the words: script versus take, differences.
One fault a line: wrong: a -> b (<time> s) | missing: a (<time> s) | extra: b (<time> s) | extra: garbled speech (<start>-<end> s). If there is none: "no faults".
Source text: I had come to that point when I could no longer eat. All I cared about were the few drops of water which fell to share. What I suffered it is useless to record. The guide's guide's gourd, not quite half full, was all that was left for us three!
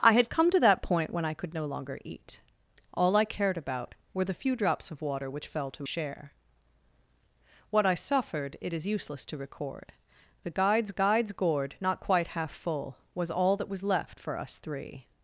no faults